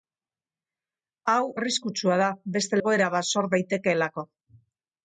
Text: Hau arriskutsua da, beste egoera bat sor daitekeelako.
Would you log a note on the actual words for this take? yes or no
no